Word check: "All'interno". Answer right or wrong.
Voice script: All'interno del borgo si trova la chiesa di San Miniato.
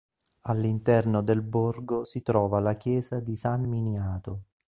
right